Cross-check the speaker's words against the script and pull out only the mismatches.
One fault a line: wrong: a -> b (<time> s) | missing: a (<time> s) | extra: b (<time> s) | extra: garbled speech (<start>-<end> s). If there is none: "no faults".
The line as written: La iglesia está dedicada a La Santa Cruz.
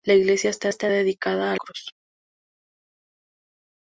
extra: está (0.7 s)
missing: La Santa (1.6 s)